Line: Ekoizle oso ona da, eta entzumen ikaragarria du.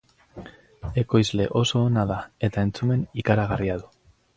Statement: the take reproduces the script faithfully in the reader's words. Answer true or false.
true